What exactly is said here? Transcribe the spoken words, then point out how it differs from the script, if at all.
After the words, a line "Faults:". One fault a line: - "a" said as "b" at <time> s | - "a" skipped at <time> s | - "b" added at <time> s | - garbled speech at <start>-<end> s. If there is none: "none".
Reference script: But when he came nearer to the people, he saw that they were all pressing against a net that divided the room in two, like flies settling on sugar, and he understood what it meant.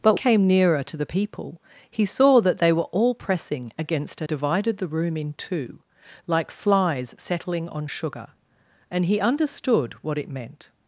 But came nearer to the people, he saw that they were all pressing against a divided the room in two, like flies settling on sugar, and he understood what it meant.
Faults:
- "when he" skipped at 0.1 s
- "net that" skipped at 4.3 s